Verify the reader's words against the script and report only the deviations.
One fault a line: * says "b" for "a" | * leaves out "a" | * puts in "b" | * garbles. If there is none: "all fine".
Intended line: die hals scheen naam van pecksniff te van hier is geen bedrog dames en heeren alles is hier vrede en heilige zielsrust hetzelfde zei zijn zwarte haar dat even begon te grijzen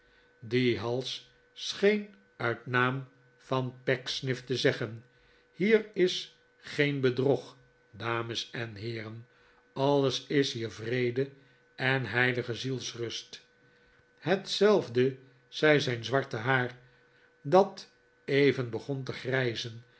* puts in "uit"
* says "zeggen" for "van"